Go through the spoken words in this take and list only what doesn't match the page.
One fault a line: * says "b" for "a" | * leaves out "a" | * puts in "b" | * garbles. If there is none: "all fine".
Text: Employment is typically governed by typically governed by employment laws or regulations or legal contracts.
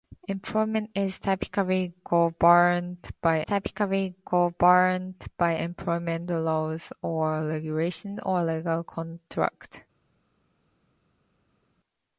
all fine